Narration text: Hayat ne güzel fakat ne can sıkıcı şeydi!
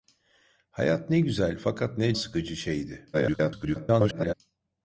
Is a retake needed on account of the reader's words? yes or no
yes